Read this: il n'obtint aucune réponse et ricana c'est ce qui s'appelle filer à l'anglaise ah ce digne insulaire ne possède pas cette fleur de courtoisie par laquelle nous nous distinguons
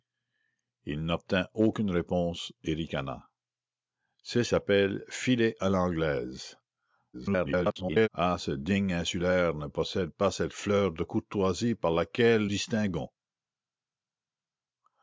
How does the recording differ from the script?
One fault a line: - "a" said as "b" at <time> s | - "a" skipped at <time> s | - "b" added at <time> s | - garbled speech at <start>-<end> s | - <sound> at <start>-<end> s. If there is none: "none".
- "ce qui" skipped at 4.4 s
- garbled speech at 7.1-8.1 s
- "nous nous" skipped at 12.5 s